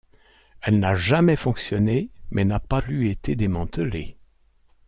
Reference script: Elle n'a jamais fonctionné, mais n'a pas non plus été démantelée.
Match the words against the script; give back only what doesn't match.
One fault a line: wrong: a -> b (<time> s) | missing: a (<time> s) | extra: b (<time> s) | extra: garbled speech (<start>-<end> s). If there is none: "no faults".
missing: non (2.8 s)